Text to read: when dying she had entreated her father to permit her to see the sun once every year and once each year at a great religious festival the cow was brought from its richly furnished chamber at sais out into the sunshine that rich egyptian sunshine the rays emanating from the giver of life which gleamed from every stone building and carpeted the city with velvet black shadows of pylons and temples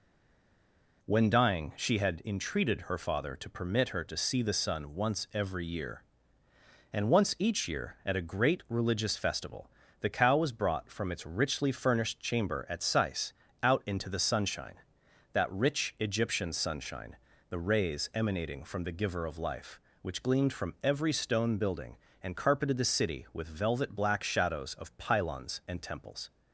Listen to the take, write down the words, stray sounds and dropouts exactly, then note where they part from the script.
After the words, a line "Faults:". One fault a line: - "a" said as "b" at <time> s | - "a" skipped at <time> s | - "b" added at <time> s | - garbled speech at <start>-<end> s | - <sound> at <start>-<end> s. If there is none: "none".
when dying she had entreated her father to permit her to see the sun once every year and once each year at a great religious festival the cow was brought from its richly furnished chamber at sais out into the sunshine that rich egyptian sunshine the rays emanating from the giver of life which gleamed from every stone building and carpeted the city with velvet black shadows of pylons and temples
Faults:
none